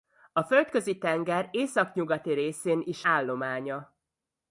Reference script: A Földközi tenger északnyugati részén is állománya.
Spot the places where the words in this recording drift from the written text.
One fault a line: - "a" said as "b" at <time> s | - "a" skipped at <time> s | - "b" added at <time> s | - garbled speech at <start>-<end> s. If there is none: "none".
none